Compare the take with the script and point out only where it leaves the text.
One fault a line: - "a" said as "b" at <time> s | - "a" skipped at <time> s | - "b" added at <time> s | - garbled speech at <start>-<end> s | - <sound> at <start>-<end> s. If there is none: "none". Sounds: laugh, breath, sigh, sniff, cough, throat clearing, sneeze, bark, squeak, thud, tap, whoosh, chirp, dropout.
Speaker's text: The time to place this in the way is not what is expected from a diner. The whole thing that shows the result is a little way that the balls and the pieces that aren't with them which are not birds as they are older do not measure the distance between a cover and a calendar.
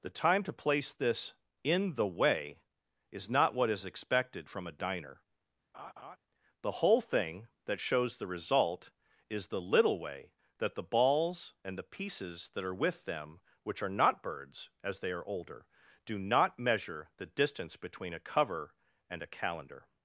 - laugh at 5.7-6.2 s
- "a" said as "the" at 9.5 s
- "aren't" said as "are" at 12.6 s